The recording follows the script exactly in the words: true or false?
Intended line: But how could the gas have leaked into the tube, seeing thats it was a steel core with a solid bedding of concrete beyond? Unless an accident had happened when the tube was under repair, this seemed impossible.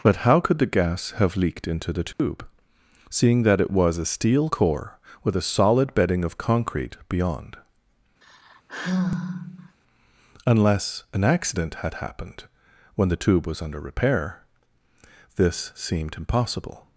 false